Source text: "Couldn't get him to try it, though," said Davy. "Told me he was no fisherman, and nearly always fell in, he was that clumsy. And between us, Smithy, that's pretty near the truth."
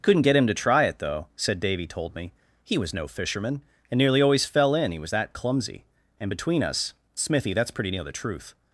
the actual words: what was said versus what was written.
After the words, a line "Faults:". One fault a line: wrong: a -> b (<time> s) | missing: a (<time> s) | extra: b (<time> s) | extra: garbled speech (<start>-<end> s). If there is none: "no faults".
"Couldn't get him to try it, though," said Davy. "Told me he was no fisherman, and nearly always fell in, he was that clumsy. And between us, Smithy, that's pretty near the truth."
Faults:
no faults